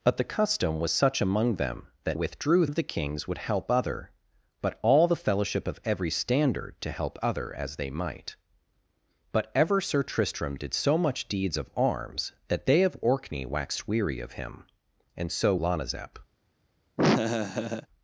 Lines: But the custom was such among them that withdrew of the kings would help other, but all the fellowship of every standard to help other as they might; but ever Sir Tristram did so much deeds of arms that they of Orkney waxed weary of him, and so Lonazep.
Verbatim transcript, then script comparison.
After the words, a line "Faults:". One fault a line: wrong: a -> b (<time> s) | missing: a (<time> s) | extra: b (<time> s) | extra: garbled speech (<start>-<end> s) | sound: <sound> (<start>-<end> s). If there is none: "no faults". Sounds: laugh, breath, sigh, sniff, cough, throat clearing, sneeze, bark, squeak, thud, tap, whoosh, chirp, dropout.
But the custom was such among them that withdrew of the kings would help other, but all the fellowship of every standard to help other as they might; but ever Sir Tristram did so much deeds of arms that they of Orkney waxed weary of him, and so Lonazep.
Faults:
sound: laugh (17.0-17.9 s)